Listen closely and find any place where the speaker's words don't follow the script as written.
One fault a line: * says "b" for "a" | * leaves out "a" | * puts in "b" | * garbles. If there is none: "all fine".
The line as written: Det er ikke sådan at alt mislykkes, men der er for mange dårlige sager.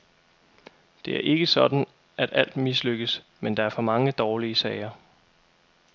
all fine